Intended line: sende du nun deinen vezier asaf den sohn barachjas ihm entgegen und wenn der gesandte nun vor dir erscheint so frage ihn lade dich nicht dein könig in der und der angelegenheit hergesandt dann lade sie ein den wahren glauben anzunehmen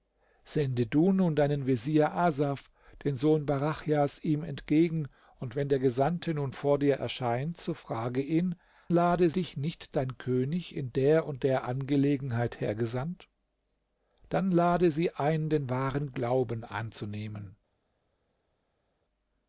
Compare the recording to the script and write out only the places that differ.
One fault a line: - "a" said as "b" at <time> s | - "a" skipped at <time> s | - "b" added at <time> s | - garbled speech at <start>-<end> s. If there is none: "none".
none